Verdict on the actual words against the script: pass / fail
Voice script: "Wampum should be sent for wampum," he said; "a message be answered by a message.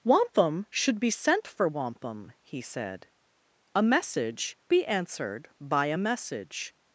pass